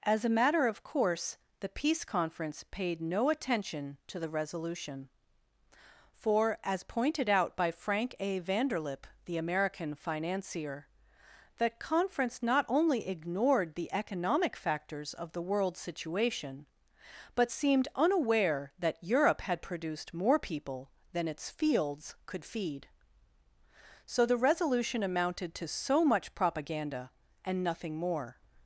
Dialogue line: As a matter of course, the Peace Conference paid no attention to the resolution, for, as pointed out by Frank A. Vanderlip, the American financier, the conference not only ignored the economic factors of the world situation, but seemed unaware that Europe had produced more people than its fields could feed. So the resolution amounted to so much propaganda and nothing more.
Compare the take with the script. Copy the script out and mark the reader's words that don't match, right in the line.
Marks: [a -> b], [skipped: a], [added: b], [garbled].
As a matter of course, the Peace Conference paid no attention to the resolution, for, as pointed out by Frank A. Vanderlip, the American financier, the conference not only ignored the economic factors of the world situation, but seemed unaware that Europe had produced more people than its fields could feed. So the resolution amounted to so much propaganda and nothing more.